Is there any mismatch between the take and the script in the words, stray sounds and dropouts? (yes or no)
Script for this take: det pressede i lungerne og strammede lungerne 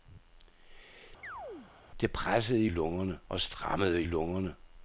yes